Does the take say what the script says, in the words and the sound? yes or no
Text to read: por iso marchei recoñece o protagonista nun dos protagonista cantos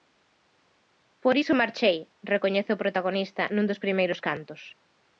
no